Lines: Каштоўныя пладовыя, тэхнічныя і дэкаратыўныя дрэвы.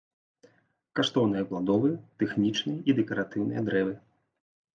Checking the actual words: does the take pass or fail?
pass